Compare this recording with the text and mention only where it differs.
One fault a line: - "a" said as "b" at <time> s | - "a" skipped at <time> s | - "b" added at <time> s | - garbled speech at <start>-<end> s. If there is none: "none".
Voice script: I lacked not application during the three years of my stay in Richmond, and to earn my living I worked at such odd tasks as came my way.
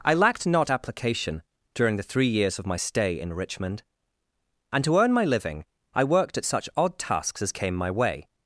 none